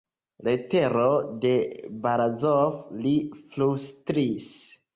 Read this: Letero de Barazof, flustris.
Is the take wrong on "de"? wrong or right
right